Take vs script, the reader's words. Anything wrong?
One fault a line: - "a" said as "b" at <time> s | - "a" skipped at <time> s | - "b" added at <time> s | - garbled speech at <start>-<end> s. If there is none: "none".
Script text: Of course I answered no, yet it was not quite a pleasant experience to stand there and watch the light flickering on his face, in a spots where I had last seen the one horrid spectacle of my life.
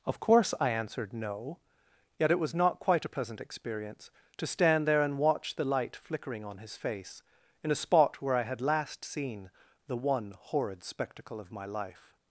- "spots" said as "spot" at 7.8 s